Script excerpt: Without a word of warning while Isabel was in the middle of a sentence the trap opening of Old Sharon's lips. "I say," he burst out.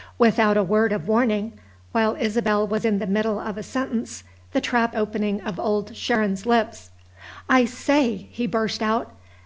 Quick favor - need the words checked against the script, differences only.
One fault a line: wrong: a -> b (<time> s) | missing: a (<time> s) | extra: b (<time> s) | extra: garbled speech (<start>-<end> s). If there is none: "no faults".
no faults